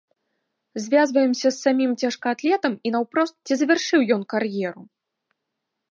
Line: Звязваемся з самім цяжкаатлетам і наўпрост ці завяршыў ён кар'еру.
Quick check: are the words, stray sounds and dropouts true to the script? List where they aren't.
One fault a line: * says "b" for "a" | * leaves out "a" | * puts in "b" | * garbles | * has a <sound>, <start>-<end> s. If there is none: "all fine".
all fine